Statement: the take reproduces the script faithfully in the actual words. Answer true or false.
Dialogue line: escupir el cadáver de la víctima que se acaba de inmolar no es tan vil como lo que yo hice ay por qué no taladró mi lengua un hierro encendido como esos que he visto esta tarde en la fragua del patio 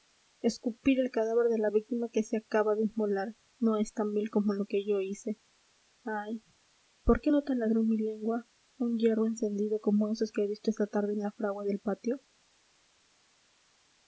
true